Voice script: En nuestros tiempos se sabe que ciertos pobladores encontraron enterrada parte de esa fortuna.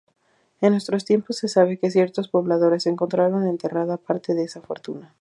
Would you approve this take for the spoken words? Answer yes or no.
yes